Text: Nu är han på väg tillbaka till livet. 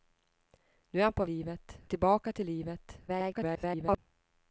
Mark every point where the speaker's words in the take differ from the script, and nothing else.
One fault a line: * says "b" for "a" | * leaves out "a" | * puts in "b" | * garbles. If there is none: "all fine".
* says "livet" for "väg"
* garbles